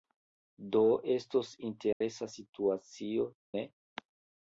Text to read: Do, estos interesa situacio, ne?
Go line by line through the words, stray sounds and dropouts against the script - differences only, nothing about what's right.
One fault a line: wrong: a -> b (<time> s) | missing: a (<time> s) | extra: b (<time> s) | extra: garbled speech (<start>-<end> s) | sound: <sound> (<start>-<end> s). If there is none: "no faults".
sound: dropout (1.9-2.0 s)